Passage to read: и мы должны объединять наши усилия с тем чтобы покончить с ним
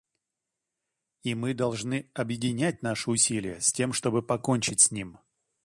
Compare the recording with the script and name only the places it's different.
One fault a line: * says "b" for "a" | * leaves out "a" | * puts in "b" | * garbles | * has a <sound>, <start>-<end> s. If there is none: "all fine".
all fine